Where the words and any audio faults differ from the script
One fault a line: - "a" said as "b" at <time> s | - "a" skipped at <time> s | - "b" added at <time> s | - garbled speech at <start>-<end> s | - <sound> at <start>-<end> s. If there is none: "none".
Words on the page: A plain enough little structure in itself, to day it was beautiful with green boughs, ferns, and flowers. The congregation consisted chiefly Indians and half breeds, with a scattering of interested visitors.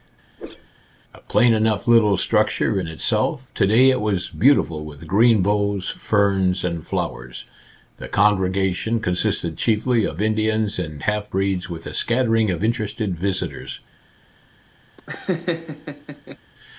- whoosh at 0.4-0.7 s
- "of" added at 10.0 s
- laugh at 15.0-16.4 s